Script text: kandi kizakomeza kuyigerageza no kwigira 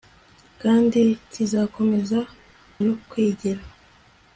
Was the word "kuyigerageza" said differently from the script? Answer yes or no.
yes